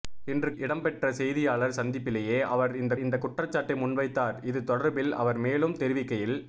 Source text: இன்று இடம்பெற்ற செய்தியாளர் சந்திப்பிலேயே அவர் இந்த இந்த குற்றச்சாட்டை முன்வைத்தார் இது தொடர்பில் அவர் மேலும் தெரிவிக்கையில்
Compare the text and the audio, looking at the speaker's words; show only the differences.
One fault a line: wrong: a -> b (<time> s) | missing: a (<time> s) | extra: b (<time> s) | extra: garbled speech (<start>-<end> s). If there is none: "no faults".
no faults